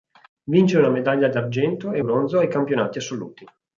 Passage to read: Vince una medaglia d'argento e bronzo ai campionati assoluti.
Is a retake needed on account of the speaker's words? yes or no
no